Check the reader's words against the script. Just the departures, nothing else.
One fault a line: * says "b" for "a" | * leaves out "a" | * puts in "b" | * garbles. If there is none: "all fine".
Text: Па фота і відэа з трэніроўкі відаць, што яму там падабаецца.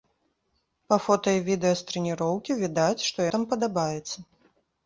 * leaves out "яму"